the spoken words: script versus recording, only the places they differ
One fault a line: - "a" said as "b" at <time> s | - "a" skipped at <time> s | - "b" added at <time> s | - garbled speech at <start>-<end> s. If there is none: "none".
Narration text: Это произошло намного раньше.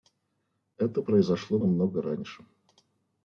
none